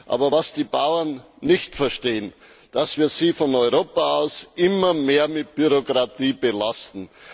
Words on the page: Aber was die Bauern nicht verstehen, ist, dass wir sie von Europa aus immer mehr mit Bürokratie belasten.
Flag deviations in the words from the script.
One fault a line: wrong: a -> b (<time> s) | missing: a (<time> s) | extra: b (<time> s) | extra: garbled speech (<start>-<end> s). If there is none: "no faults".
no faults